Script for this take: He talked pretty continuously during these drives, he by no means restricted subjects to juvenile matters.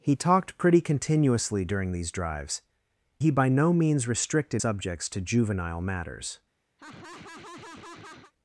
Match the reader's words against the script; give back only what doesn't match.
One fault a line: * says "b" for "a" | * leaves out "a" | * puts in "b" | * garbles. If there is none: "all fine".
all fine